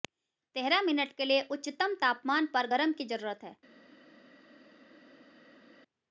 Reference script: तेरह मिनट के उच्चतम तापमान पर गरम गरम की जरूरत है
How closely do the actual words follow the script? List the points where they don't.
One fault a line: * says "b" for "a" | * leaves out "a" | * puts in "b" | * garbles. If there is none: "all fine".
* puts in "लिए"
* leaves out "गरम"